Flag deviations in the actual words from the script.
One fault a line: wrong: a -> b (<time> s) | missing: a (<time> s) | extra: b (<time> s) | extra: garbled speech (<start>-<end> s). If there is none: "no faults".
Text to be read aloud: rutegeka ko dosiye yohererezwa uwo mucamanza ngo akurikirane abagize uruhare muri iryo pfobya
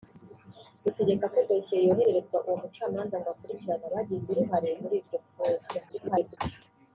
extra: garbled speech (5.9-6.4 s)